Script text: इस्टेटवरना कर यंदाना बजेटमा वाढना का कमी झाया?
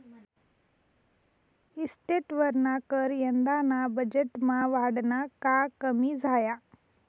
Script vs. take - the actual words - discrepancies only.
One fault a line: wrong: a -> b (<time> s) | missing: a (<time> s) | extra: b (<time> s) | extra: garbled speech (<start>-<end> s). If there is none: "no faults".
no faults